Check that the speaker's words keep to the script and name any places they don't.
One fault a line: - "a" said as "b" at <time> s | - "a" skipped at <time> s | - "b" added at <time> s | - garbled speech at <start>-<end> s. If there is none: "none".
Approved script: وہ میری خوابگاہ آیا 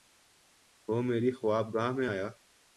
- "میں" added at 1.9 s